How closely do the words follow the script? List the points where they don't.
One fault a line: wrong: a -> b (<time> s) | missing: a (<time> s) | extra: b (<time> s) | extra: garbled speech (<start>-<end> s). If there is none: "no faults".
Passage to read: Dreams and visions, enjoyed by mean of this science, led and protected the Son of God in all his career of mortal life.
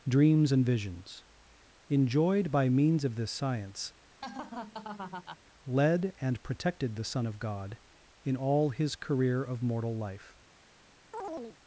wrong: mean -> means (2.7 s)